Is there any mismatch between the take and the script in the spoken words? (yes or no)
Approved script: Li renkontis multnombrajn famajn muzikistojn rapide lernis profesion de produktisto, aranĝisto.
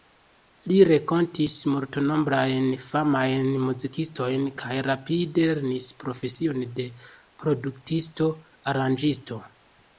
yes